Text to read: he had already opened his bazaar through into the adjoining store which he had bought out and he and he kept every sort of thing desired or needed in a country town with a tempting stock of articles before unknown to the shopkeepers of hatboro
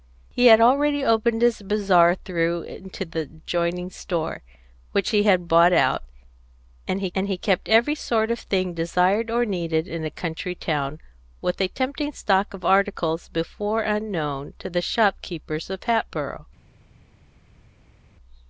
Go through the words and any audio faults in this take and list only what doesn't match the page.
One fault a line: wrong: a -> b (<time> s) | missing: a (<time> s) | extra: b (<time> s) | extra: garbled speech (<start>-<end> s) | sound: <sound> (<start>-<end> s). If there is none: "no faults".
no faults